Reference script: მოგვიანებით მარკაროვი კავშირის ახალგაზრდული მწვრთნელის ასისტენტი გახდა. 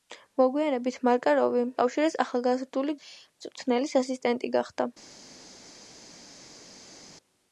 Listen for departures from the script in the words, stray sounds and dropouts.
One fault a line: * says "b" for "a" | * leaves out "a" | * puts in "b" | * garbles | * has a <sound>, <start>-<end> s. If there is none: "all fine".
all fine